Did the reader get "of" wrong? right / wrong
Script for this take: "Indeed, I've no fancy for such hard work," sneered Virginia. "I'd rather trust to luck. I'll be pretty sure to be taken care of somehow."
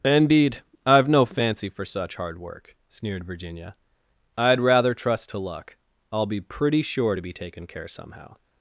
wrong